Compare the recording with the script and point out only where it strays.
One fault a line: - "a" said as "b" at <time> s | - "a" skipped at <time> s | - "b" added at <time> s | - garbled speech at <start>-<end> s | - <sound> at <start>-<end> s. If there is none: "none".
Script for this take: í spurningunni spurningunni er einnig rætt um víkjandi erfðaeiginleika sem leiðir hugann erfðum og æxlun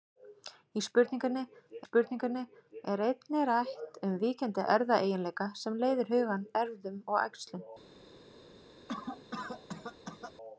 - cough at 8.9-10.3 s